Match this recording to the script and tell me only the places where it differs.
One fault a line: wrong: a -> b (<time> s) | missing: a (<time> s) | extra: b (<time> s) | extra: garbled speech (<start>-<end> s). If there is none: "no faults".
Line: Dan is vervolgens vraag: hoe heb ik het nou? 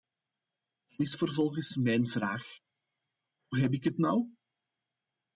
extra: mijn (1.8 s)